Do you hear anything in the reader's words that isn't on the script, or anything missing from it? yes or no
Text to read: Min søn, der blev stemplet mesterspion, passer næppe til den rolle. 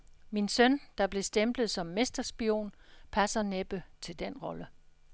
yes